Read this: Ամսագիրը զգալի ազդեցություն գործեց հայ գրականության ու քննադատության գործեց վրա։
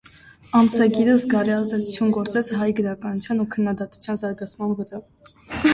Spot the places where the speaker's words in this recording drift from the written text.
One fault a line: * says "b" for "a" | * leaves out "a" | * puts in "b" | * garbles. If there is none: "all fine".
* says "զարգացման" for "գործեց"